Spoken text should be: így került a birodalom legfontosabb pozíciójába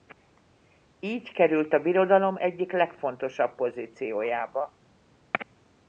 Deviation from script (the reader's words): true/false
true